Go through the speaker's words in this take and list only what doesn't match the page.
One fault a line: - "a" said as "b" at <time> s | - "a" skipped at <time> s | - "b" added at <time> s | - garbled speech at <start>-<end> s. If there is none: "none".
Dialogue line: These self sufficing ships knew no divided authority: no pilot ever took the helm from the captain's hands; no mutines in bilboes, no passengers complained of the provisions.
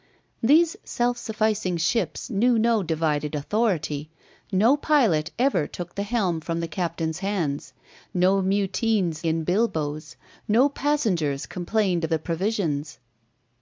none